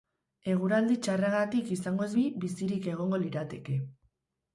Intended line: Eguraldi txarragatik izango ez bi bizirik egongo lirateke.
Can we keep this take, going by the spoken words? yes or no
yes